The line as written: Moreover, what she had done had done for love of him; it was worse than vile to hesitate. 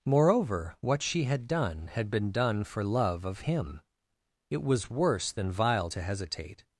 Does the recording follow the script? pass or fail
fail